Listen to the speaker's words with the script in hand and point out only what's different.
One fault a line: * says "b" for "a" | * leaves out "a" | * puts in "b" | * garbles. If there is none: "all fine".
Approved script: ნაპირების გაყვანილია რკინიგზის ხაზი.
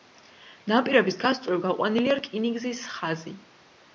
* puts in "გასწვრივ"